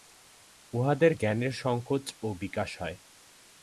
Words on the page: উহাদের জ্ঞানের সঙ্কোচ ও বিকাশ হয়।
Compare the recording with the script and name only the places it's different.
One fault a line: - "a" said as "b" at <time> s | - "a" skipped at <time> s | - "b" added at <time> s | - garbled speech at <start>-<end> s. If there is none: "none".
none